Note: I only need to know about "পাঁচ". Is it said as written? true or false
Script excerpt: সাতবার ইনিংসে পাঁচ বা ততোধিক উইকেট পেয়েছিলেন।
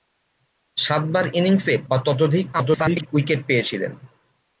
false